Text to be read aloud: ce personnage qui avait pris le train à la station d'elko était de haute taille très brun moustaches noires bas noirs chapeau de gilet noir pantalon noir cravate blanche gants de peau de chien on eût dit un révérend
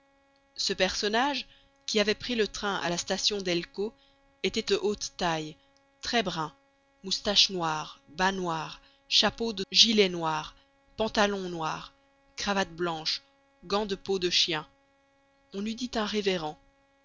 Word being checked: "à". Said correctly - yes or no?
yes